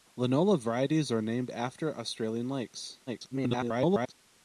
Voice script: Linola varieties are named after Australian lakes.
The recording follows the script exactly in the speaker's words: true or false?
false